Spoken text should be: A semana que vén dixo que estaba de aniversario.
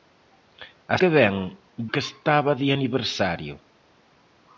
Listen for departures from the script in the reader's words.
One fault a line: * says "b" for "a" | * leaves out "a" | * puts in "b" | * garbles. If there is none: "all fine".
* leaves out "semana"
* leaves out "dixo"